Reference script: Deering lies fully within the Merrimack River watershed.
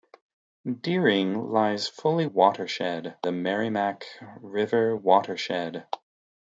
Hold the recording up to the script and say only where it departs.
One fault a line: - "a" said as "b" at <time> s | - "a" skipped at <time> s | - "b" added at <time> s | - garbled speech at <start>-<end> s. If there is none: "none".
- "within" said as "watershed" at 2.2 s